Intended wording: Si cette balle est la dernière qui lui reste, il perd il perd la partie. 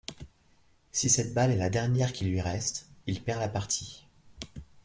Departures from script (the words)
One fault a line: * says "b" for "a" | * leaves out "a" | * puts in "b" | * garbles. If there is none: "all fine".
* leaves out "il perd"